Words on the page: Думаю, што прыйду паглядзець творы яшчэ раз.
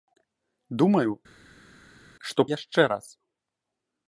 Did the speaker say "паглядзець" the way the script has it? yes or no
no